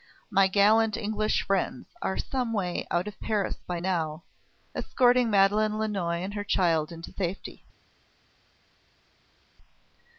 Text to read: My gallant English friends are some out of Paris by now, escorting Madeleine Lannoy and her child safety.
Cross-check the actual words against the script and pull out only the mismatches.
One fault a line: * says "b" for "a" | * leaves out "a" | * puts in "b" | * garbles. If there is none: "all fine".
* puts in "way"
* puts in "into"